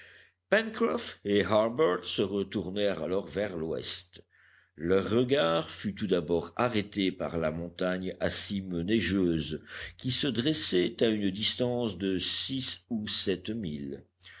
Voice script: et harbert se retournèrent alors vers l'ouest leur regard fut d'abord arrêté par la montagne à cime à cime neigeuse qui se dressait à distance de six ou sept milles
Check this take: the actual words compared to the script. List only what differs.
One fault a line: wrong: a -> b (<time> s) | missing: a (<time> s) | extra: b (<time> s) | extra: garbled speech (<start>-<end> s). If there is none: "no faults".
extra: tout (5.9 s)
missing: à cime (8.8 s)
extra: une (11.1 s)